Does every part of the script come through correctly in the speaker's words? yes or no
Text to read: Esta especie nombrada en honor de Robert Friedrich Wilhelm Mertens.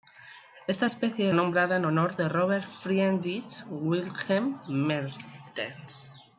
yes